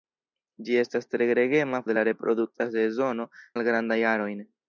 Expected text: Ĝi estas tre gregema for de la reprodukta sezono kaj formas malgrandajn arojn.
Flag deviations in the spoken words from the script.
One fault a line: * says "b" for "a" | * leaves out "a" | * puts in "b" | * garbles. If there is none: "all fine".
* leaves out "for"
* leaves out "kaj formas"